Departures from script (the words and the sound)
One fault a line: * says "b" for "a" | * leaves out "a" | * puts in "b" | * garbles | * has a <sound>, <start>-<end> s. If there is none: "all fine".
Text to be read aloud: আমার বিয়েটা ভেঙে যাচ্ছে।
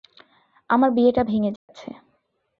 * has a dropout, 1.6-1.7 s